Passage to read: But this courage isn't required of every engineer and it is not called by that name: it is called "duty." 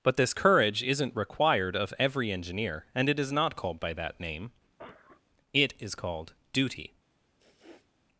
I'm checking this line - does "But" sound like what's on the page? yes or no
yes